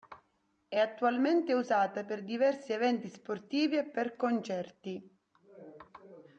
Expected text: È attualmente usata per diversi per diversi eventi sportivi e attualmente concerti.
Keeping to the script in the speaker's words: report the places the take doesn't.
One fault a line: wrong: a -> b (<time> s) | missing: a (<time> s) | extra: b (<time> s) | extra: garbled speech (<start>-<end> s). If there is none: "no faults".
missing: per diversi (2.7 s)
wrong: attualmente -> per (3.8 s)